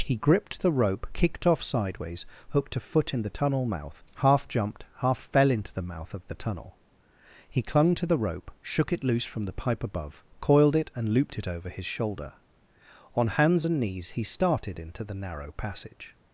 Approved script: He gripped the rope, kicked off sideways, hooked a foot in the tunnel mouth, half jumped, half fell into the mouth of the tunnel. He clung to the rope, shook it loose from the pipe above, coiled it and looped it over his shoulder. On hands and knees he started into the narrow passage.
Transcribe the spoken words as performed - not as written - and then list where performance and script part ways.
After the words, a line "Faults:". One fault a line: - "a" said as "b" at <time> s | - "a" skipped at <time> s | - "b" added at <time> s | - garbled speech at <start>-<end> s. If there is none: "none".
He gripped the rope, kicked off sideways, hooked a foot in the tunnel mouth, half jumped, half fell into the mouth of the tunnel. He clung to the rope, shook it loose from the pipe above, coiled it and looped it over his shoulder. On hands and knees he started into the narrow passage.
Faults:
none